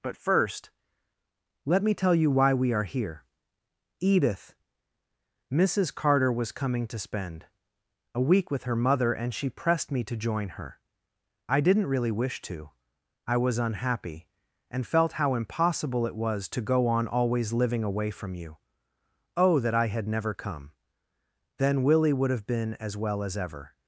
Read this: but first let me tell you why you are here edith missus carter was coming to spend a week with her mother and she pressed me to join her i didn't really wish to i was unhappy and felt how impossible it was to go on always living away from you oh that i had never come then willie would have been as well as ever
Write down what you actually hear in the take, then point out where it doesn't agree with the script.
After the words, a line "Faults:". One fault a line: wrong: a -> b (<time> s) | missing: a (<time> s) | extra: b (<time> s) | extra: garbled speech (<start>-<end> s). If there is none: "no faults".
but first let me tell you why we are here edith missus carter was coming to spend a week with her mother and she pressed me to join her i didn't really wish to i was unhappy and felt how impossible it was to go on always living away from you oh that i had never come then willie would have been as well as ever
Faults:
wrong: you -> we (2.5 s)